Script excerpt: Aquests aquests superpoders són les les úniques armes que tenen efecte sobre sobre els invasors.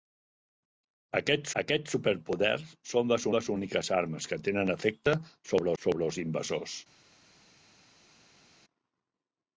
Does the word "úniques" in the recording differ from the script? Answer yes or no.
no